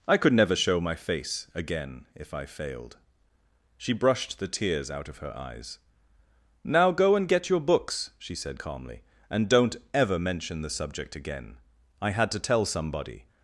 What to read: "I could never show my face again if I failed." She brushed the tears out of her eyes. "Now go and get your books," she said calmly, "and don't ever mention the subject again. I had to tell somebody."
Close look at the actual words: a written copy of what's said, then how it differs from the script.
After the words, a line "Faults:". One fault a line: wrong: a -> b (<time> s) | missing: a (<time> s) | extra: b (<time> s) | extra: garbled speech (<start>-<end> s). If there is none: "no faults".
"I could never show my face again if I failed." She brushed the tears out of her eyes. "Now go and get your books," she said calmly, "and don't ever mention the subject again. I had to tell somebody."
Faults:
no faults